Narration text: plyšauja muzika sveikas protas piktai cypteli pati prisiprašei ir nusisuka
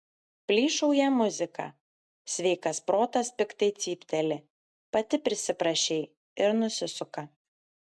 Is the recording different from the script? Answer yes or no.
no